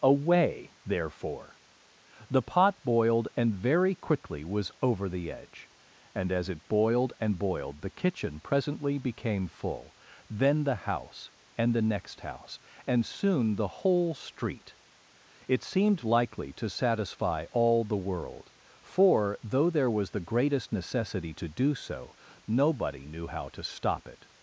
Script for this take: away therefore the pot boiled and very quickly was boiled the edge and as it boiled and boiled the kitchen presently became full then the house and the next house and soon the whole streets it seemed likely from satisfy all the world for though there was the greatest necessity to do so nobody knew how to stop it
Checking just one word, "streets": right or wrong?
wrong